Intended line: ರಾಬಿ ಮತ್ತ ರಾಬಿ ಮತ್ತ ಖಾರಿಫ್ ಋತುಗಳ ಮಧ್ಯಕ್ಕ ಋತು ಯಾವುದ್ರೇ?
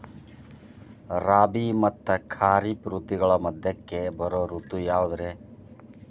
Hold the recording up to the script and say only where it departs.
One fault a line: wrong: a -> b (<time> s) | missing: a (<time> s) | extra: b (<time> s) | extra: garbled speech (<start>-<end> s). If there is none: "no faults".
missing: ರಾಬಿ ಮತ್ತ (2.1 s)
extra: ಬರೋ (4.2 s)